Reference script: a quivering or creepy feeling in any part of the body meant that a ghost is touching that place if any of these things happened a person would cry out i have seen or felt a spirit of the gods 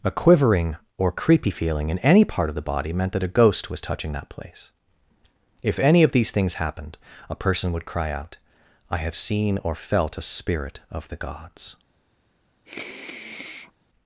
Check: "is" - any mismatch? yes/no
yes